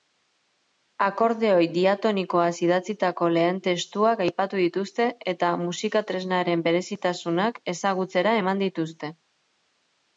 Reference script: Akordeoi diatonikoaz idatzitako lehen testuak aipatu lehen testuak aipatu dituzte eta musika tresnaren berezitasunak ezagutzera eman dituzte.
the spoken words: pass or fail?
fail